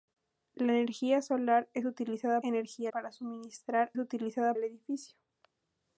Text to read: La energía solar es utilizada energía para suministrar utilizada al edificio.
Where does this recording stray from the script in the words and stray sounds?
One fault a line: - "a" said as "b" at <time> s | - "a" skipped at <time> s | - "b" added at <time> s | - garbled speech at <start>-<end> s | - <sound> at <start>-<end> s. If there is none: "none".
none